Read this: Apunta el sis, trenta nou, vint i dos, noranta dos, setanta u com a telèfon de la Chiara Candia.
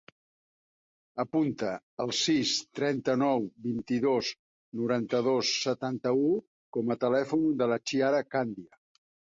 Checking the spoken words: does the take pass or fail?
pass